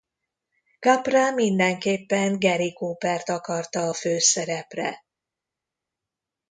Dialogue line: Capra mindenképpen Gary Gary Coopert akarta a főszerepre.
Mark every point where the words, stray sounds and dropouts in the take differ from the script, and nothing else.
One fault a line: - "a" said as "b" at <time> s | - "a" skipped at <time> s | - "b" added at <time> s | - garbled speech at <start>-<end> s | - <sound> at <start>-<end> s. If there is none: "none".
- "Gary" skipped at 2.7 s